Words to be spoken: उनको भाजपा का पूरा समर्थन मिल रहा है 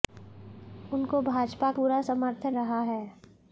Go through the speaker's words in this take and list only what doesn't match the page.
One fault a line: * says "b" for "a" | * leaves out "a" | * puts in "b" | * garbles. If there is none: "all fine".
* leaves out "का"
* leaves out "मिल"